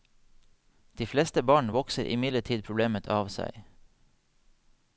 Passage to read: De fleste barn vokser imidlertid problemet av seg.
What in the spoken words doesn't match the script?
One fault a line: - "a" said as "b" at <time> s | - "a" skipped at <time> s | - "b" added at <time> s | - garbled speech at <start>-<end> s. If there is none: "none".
none